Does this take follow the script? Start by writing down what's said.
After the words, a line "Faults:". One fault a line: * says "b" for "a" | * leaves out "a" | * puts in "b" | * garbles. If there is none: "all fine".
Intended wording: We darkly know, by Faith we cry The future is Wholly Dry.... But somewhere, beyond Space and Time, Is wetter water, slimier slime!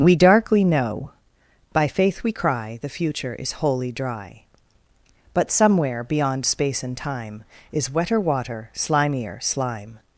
We darkly know, by Faith we cry The future is Wholly Dry.... But somewhere, beyond Space and Time, Is wetter water, slimier slime!
Faults:
all fine